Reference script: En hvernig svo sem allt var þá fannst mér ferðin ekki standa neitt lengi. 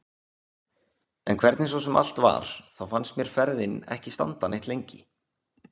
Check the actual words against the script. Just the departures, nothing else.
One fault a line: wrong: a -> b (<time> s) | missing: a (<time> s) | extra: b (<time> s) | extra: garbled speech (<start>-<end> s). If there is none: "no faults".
no faults